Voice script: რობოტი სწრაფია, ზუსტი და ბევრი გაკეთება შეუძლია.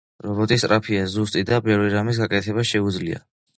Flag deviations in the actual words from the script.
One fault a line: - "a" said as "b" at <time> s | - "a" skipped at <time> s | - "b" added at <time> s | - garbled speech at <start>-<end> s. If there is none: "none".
- "რამის" added at 2.0 s